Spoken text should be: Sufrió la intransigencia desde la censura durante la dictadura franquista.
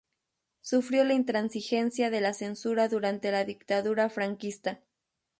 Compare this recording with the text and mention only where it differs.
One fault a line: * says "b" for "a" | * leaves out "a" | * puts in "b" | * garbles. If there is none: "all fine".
* says "de" for "desde"